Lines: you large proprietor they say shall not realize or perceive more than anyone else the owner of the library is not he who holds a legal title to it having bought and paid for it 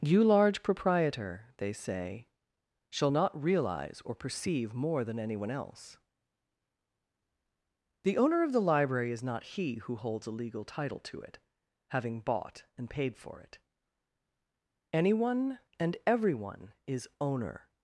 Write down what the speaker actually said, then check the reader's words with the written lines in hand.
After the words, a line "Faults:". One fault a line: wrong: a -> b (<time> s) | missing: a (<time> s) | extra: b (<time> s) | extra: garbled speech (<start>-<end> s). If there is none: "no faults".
you large proprietor they say shall not realize or perceive more than anyone else the owner of the library is not he who holds a legal title to it having bought and paid for it anyone and everyone is owner
Faults:
extra: anyone and everyone is owner (14.9 s)